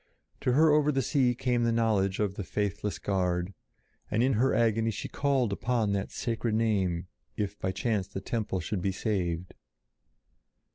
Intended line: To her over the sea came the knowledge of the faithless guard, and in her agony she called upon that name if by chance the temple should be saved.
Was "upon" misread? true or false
false